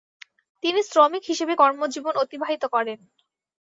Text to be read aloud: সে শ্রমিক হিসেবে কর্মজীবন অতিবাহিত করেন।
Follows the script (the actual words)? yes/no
no